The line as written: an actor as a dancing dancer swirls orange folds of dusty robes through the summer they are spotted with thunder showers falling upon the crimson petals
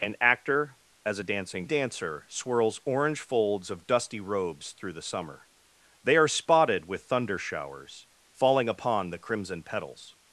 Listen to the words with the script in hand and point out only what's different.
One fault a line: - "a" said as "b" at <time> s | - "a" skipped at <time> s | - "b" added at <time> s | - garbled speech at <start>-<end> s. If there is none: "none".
none